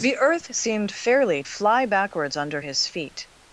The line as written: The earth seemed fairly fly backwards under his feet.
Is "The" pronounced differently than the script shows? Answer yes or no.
no